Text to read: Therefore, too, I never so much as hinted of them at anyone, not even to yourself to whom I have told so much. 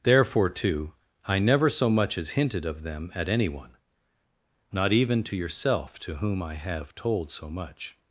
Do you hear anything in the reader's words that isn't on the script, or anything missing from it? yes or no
no